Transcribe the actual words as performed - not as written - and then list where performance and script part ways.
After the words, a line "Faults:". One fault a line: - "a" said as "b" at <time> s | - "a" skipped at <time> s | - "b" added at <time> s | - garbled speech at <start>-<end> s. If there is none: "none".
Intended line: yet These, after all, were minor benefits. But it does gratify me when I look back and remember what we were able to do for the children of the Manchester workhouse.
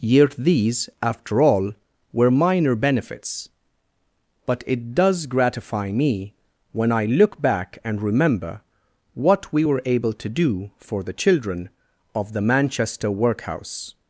yet These, after all, were minor benefits. But it does gratify me when I look back and remember what we were able to do for the children of the Manchester workhouse.
Faults:
none